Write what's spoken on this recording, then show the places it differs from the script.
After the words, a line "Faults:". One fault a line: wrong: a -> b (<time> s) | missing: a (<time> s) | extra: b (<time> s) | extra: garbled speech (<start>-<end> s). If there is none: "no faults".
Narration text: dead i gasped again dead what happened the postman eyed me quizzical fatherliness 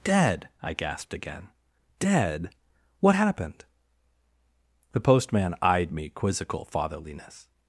dead i gasped again dead what happened the postman eyed me quizzical fatherliness
Faults:
no faults